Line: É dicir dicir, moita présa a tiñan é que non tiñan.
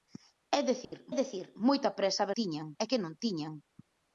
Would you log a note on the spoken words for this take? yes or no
no